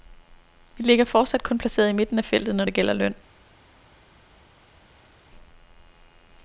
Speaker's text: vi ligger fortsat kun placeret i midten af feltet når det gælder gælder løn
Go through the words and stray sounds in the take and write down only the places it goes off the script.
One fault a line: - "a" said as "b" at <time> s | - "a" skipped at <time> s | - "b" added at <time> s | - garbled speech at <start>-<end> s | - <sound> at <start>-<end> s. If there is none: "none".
- "gælder" skipped at 2.9 s